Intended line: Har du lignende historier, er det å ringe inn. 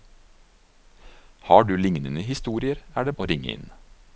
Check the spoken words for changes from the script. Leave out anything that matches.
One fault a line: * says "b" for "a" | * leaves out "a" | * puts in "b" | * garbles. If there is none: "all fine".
all fine